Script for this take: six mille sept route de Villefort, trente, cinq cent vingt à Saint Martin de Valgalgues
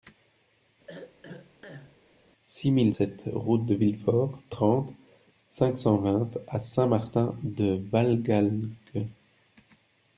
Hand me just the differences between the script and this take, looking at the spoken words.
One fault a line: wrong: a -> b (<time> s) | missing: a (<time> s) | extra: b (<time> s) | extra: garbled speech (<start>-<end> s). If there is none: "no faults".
no faults